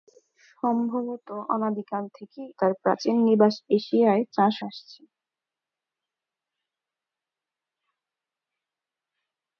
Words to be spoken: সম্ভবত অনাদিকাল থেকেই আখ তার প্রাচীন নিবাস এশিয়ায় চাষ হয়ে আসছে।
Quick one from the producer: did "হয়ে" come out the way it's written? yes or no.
no